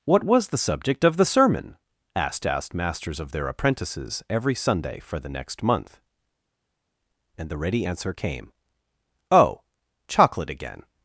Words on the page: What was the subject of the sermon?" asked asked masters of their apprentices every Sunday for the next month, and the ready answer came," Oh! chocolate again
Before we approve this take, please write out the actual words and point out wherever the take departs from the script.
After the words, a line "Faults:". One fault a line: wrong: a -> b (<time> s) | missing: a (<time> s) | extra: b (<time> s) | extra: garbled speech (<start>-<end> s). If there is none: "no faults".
What was the subject of the sermon?" asked asked masters of their apprentices every Sunday for the next month, and the ready answer came," Oh! chocolate again
Faults:
no faults